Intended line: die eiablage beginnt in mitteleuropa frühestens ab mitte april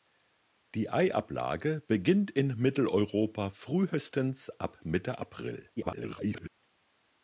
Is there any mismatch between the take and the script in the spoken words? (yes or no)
yes